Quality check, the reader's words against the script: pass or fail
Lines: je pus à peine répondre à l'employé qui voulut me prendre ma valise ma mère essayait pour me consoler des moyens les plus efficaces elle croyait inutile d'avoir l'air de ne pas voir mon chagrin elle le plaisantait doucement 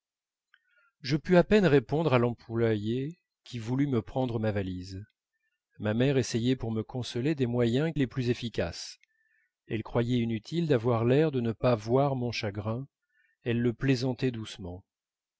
pass